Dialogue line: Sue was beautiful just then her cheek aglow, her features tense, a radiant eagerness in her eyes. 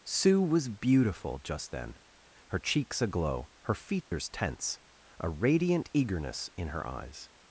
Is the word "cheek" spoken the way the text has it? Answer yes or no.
no